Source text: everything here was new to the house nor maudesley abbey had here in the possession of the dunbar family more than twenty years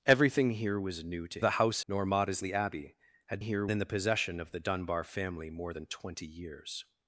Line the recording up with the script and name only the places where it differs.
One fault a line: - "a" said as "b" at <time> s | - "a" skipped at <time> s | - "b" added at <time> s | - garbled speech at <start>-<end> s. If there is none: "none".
none